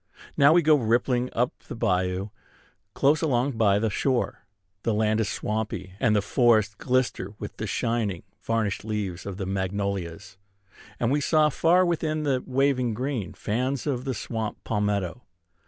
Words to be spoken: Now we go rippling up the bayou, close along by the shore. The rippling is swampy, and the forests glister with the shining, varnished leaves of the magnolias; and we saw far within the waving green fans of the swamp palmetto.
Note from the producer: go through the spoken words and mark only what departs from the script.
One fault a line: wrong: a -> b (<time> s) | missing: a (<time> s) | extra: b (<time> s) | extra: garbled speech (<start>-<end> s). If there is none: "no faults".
wrong: rippling -> land (4.9 s)